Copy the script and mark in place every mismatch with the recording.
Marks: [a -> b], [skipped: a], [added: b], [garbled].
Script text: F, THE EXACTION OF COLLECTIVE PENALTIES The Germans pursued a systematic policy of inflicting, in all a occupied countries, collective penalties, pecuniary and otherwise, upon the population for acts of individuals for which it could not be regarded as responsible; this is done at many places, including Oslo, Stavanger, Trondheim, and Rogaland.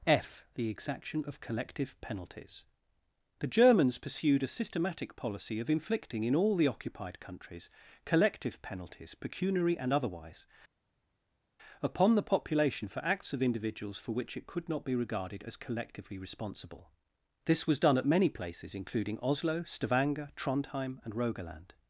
F, THE EXACTION OF COLLECTIVE PENALTIES The Germans pursued a systematic policy of inflicting, in all [a -> the] occupied countries, collective penalties, pecuniary and otherwise, upon the population for acts of individuals for which it could not be regarded as [added: collectively] responsible; this [is -> was] done at many places, including Oslo, Stavanger, Trondheim, and Rogaland.